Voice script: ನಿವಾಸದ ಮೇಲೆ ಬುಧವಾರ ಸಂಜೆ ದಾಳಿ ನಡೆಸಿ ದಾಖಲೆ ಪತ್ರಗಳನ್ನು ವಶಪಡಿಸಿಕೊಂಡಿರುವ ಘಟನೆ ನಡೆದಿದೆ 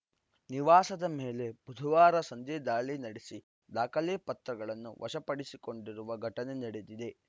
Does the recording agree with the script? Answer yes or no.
yes